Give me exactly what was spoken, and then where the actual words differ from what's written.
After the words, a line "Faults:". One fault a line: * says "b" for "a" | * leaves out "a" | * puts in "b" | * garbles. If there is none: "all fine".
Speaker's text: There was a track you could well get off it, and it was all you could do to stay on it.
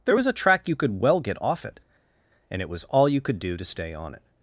There was a track you could well get off it, and it was all you could do to stay on it.
Faults:
all fine